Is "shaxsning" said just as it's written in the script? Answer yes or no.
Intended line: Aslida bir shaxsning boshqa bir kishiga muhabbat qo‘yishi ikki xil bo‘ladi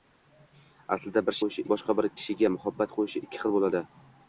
no